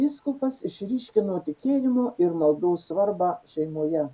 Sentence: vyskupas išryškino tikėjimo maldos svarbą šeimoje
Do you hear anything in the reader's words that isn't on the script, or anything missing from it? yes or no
yes